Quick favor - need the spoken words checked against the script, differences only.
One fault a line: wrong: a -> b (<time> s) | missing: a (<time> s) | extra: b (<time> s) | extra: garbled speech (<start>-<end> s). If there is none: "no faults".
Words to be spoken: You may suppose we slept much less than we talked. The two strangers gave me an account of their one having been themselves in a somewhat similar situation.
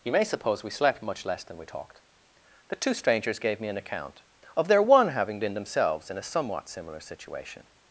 no faults